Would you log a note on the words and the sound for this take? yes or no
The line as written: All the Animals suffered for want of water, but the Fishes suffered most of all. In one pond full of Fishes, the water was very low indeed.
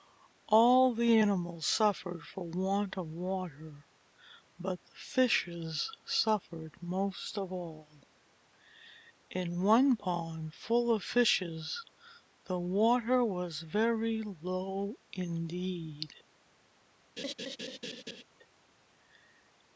yes